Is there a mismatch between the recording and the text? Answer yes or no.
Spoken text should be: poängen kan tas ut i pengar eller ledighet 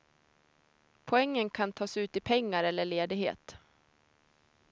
no